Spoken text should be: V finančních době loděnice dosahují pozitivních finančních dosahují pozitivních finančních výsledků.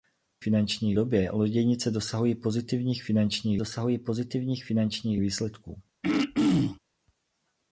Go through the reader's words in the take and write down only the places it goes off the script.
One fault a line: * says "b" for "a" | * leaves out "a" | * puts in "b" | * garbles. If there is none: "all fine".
all fine